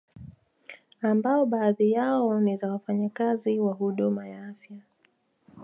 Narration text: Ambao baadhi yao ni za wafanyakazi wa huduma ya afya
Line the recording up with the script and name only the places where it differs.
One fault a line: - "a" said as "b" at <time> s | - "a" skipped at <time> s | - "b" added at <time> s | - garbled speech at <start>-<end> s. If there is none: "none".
none